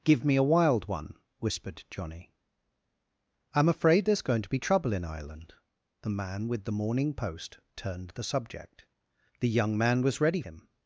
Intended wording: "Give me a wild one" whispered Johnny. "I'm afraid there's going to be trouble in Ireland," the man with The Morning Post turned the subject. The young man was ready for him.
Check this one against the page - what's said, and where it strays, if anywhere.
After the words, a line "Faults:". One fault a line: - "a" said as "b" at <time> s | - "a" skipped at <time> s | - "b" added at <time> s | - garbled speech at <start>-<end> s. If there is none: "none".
"Give me a wild one" whispered Johnny. "I'm afraid there's going to be trouble in Ireland," the man with The Morning Post turned the subject. The young man was ready him.
Faults:
- "for" skipped at 10.4 s